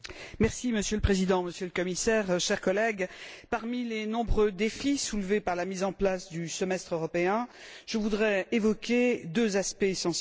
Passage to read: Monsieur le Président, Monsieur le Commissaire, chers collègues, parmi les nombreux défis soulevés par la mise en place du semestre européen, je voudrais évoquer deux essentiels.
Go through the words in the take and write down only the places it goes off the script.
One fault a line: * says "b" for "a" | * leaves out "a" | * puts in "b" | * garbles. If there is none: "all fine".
* puts in "aspects"